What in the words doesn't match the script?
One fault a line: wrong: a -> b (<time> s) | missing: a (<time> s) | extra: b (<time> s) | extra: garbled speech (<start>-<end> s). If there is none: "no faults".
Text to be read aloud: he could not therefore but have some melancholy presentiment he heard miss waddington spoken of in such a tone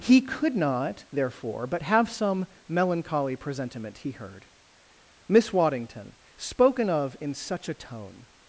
no faults